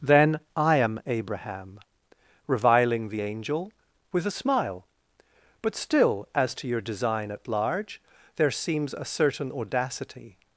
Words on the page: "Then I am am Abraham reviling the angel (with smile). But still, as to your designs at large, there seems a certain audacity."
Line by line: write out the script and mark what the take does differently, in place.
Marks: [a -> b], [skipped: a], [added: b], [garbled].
"Then I am [skipped: am] Abraham reviling the angel (with [added: a] smile). But still, as to your [designs -> design] at large, there seems a certain audacity."